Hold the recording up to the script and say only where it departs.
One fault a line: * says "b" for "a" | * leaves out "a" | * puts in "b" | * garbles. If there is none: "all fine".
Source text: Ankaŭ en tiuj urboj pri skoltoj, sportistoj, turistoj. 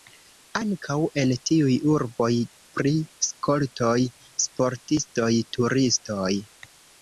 all fine